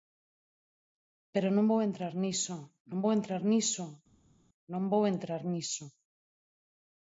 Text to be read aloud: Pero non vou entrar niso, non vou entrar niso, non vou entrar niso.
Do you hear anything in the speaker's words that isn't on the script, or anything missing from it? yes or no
no